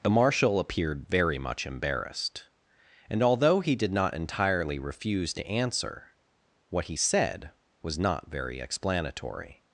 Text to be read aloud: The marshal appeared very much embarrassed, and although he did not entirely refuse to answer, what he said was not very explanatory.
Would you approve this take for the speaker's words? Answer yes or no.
yes